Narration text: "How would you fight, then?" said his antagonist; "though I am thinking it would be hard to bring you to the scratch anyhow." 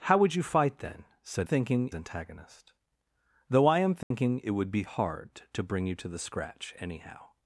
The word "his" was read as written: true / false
false